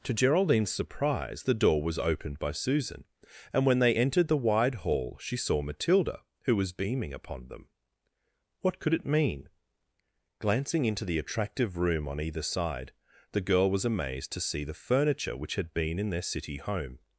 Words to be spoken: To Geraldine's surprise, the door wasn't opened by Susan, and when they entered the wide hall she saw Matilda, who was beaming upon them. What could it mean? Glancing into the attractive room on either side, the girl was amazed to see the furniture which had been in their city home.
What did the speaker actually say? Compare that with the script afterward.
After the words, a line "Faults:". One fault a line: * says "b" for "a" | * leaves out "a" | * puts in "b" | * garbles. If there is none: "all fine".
To Geraldine's surprise, the door was opened by Susan, and when they entered the wide hall she saw Matilda, who was beaming upon them. What could it mean? Glancing into the attractive room on either side, the girl was amazed to see the furniture which had been in their city home.
Faults:
* says "was" for "wasn't"